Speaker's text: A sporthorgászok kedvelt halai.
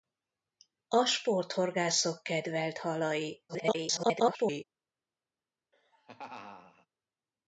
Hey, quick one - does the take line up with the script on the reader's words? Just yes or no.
no